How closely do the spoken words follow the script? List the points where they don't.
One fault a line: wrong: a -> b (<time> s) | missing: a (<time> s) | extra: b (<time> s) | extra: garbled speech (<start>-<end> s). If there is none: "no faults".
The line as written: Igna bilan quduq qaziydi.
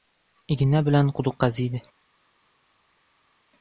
no faults